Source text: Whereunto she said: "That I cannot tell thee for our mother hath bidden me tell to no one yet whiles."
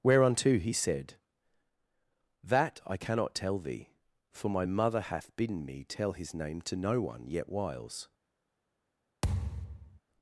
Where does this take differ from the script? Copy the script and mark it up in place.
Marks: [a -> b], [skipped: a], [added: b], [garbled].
Whereunto [she -> he] said: "That I cannot tell thee for [our -> my] mother hath bidden me tell [added: his name] to no one yet whiles."